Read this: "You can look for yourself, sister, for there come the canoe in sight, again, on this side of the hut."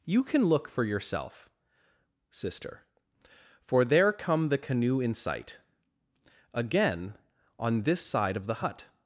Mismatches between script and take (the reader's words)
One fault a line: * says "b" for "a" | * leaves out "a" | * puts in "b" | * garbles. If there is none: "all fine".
all fine